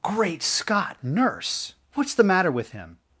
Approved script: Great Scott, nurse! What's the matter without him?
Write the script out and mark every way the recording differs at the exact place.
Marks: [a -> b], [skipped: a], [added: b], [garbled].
Great Scott, nurse! What's the matter [without -> with] him?